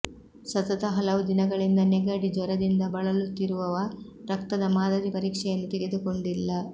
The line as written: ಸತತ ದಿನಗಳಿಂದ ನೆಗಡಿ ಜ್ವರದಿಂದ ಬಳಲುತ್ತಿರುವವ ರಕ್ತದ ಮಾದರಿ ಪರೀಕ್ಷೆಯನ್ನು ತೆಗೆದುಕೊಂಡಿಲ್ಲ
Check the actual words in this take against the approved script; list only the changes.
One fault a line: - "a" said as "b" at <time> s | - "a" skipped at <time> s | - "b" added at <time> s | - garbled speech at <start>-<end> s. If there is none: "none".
- "ಹಲವು" added at 0.9 s